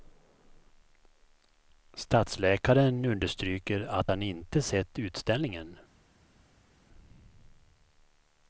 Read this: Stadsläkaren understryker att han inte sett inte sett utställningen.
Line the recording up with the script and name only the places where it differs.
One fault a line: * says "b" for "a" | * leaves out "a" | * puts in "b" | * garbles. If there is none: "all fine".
* leaves out "inte sett"